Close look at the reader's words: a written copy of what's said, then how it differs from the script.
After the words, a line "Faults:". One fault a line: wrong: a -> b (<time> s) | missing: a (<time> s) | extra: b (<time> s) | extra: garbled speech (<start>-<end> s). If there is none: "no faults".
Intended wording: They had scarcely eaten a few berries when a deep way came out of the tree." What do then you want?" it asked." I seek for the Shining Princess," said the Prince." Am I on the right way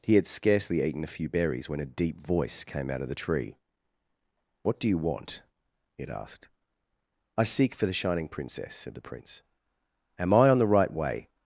He had scarcely eaten a few berries when a deep voice came out of the tree." What do you want?" it asked." I seek for the Shining Princess," said the Prince." Am I on the right way
Faults:
wrong: They -> He (0.0 s)
wrong: way -> voice (2.2 s)
missing: then (4.9 s)